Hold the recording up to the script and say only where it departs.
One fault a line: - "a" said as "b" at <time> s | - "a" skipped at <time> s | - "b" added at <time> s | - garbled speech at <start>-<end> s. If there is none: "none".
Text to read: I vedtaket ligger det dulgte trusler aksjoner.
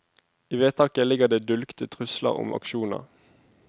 - "om" added at 2.3 s